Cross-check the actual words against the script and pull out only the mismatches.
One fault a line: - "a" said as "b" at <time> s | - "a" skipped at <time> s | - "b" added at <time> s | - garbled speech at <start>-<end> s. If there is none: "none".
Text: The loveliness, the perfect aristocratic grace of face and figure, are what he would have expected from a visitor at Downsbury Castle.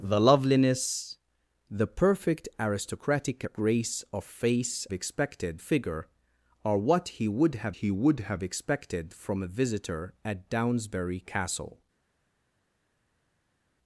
- "and" said as "expected" at 4.9 s
- "he would have" added at 7.7 s